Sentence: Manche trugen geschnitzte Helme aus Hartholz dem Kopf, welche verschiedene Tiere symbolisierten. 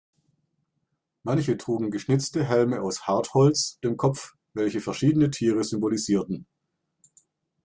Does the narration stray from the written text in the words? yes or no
no